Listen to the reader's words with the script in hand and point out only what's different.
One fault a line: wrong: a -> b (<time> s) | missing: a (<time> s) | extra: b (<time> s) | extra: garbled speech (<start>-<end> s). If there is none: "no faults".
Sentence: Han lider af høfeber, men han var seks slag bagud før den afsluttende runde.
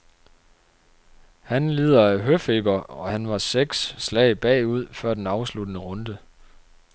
wrong: men -> og (2.8 s)